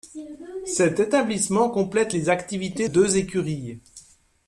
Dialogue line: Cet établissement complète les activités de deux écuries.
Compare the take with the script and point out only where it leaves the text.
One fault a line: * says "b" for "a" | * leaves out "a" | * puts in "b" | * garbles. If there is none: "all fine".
* leaves out "de"